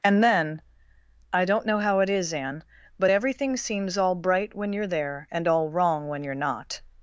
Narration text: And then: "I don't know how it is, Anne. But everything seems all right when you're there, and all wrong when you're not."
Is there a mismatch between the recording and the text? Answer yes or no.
yes